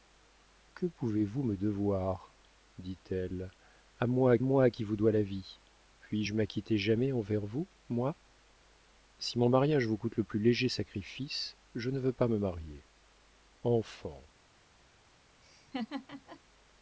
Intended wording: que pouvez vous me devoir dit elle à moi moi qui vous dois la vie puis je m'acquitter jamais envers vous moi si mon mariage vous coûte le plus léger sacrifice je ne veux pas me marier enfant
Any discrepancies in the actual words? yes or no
no